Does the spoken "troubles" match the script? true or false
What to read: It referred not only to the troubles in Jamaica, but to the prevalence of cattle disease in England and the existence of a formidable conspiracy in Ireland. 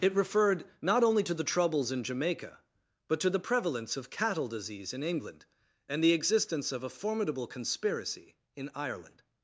true